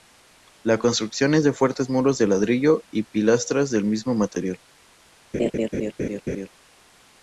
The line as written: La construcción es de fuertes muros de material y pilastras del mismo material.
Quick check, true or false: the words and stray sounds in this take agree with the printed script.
false